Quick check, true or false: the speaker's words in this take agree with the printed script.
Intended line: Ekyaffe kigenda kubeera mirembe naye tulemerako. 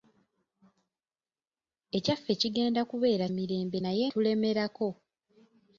true